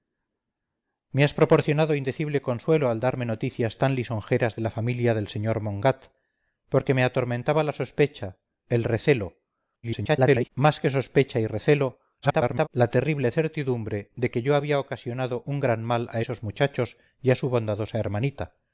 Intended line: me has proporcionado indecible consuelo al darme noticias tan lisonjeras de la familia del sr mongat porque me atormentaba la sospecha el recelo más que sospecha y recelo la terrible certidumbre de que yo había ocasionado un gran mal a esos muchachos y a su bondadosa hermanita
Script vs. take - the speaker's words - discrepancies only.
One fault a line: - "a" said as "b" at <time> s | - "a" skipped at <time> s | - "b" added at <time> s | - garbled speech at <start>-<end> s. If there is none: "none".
- garbled speech at 9.8-10.5 s
- garbled speech at 12.2-12.7 s